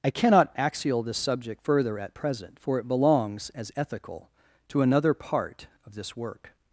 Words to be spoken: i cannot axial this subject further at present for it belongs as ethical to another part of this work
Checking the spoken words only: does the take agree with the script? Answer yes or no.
yes